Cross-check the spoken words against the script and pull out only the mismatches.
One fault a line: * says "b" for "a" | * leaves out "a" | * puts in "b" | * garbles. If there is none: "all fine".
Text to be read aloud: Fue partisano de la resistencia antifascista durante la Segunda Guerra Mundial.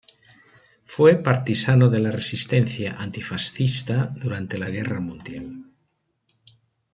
* leaves out "Segunda"